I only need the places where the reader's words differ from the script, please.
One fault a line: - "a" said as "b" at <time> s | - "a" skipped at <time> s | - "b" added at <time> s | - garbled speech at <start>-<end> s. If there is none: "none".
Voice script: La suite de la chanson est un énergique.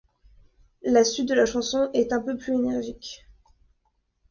- "peu plus" added at 2.2 s